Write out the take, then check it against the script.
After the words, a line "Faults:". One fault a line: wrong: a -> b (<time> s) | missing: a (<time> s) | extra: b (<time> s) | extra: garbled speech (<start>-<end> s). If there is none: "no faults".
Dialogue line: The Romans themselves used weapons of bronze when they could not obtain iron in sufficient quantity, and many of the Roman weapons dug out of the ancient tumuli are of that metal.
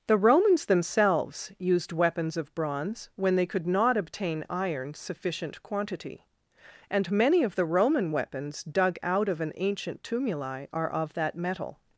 The Romans themselves used weapons of bronze when they could not obtain iron sufficient quantity, and many of the Roman weapons dug out of an ancient tumuli are of that metal.
Faults:
missing: in (4.9 s)
wrong: the -> an (9.4 s)